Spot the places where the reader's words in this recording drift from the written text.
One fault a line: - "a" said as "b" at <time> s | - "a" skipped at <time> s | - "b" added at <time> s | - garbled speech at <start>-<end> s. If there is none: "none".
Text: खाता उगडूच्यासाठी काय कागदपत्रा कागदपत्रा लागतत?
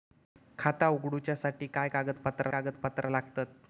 none